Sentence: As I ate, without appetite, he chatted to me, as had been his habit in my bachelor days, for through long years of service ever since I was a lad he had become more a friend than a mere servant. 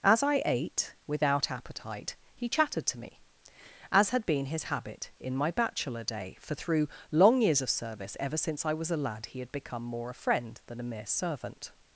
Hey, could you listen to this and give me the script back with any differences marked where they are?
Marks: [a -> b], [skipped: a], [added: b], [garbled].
As I ate, without appetite, he chatted to me, as had been his habit in my bachelor [days, -> day] for through long years of service ever since I was a lad he had become more a friend than a mere servant.